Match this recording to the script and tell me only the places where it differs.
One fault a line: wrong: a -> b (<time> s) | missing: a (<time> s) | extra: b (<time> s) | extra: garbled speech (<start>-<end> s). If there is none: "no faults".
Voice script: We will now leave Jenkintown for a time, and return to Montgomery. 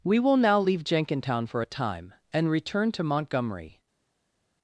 no faults